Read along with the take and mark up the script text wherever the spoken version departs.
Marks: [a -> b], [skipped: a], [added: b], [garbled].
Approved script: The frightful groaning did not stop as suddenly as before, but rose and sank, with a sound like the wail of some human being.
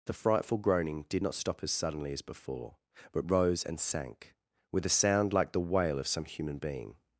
The frightful groaning did not stop as suddenly as before, but rose and sank, with a sound like the wail of some human being.